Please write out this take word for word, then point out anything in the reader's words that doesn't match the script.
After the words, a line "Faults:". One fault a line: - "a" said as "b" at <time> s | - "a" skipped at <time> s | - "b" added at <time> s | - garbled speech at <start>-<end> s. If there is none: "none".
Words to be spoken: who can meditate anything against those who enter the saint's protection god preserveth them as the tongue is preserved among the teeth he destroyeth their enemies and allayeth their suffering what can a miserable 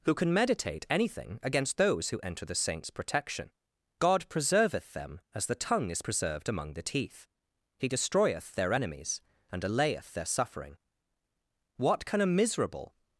who can meditate anything against those who enter the saint's protection god preserveth them as the tongue is preserved among the teeth he destroyeth their enemies and allayeth their suffering what can a miserable
Faults:
none